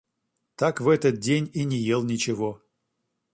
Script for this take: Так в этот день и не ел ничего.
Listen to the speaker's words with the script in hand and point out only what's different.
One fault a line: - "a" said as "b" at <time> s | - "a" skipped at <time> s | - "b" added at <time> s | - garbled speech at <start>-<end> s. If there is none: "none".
none